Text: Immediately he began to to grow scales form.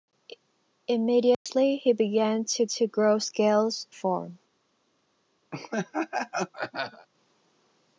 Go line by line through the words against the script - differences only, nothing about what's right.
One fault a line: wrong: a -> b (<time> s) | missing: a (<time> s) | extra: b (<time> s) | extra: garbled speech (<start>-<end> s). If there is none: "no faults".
no faults